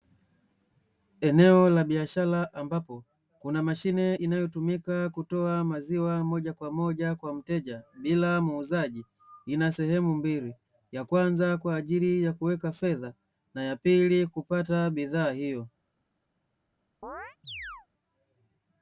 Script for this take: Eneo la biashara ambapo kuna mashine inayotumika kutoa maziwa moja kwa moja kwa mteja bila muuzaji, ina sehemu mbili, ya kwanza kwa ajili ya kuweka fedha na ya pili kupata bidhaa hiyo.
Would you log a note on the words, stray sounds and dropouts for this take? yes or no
yes